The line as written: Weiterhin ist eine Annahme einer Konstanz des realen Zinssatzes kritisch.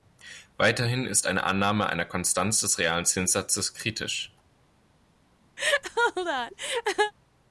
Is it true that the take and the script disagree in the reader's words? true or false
false